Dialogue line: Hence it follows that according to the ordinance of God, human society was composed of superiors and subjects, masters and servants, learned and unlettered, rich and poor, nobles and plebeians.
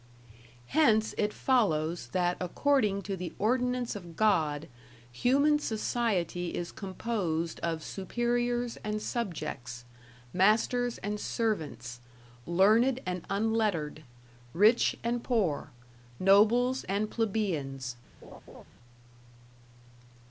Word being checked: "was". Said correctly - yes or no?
no